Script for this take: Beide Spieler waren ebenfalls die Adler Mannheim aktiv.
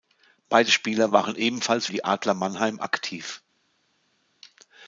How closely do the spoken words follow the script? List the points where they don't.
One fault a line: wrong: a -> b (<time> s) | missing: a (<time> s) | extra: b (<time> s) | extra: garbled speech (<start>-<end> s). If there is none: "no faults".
no faults